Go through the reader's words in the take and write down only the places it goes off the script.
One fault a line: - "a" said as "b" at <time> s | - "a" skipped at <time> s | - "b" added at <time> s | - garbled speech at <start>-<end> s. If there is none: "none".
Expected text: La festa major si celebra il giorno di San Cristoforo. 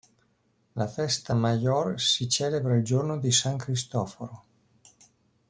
none